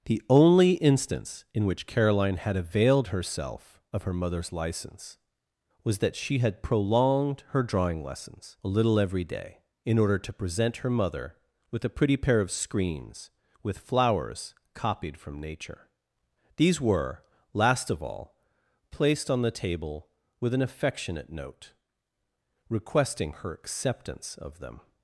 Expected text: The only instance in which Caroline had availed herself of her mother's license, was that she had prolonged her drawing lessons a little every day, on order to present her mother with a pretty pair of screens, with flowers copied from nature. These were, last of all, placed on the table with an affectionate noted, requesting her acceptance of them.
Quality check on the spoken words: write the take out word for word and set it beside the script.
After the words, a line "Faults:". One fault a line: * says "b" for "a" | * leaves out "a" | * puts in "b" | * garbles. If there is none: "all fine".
The only instance in which Caroline had availed herself of her mother's license, was that she had prolonged her drawing lessons a little every day, in order to present her mother with a pretty pair of screens, with flowers copied from nature. These were, last of all, placed on the table with an affectionate note, requesting her acceptance of them.
Faults:
* says "in" for "on"
* says "note" for "noted"